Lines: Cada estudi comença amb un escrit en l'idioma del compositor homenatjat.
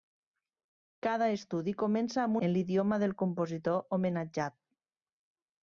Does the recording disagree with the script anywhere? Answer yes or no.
yes